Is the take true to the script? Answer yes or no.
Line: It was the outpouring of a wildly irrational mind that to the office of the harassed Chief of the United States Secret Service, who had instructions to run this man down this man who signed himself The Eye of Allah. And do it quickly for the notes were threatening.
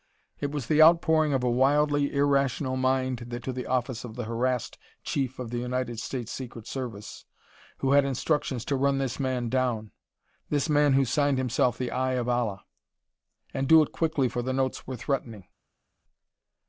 yes